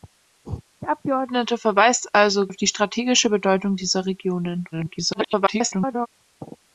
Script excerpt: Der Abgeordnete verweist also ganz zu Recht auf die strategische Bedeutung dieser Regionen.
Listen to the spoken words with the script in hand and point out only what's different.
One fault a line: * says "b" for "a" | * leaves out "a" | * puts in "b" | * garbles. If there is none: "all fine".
* leaves out "ganz zu Recht"
* garbles